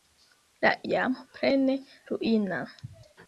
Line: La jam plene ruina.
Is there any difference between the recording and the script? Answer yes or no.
no